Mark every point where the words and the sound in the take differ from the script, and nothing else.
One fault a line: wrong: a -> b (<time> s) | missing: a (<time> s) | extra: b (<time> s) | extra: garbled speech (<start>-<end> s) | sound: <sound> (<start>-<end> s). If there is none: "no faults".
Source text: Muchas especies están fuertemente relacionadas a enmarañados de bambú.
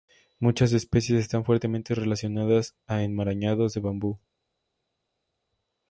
no faults